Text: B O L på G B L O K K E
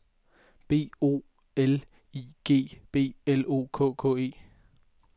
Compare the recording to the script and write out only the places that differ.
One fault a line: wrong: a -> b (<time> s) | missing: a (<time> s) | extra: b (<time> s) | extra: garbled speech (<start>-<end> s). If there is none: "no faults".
wrong: på -> I (2.1 s)